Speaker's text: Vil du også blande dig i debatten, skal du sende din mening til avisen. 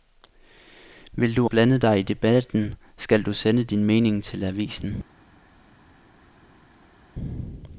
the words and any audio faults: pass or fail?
fail